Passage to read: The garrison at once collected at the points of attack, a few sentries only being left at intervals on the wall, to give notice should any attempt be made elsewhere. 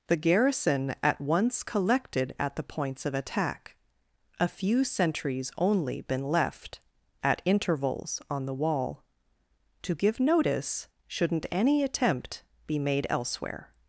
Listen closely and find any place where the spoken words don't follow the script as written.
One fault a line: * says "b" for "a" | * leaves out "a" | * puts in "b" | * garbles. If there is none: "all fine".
* says "been" for "being"
* says "shouldn't" for "should"